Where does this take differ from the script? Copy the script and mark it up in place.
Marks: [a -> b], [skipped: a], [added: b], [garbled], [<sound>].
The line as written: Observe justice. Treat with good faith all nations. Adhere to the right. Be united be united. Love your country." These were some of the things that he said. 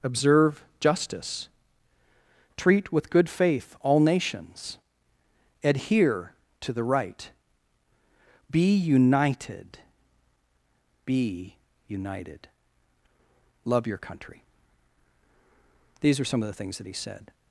Observe justice. Treat with good faith all nations. Adhere to the right. Be united be united. Love your country." These [were -> are] some of the things that he said.